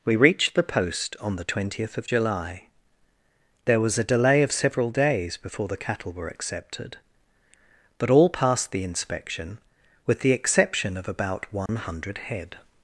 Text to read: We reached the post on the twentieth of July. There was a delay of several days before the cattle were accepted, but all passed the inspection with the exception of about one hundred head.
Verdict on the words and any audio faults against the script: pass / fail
fail